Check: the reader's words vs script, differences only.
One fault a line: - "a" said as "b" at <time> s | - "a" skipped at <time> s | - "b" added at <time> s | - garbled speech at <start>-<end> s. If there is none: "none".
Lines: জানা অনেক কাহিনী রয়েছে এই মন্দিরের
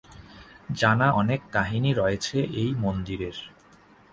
none